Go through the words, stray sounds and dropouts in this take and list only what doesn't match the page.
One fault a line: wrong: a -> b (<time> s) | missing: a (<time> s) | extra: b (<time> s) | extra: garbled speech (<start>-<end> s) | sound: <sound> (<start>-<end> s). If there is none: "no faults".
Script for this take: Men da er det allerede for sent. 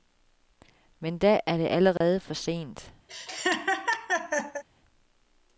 sound: dropout (2.0-2.0 s)
sound: laugh (3.1-4.6 s)